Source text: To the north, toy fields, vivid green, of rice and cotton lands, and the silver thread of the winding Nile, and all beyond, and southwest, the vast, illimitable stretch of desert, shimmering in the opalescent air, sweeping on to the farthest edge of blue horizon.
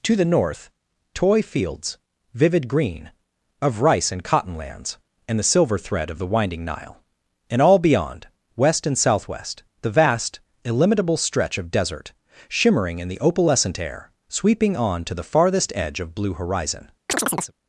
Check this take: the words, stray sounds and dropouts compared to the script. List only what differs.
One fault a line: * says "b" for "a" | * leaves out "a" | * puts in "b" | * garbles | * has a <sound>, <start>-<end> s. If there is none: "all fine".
* puts in "west"
* has a chirp, 17.1-17.5 s